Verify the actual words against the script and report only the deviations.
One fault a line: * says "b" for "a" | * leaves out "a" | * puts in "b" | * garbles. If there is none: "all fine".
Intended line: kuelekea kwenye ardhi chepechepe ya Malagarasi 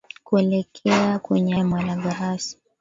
* leaves out "ardhi chepechepe"